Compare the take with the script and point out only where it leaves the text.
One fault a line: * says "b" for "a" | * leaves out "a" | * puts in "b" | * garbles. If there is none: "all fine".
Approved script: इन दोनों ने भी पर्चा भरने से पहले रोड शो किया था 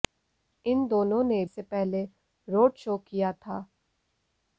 * leaves out "भी पर्चा भरने"